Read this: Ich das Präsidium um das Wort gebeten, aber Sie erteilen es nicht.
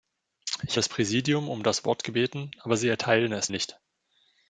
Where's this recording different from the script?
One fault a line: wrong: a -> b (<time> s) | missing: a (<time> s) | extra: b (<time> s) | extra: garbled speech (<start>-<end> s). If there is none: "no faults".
no faults